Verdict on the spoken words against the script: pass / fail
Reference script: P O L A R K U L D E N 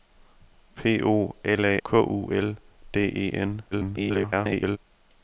fail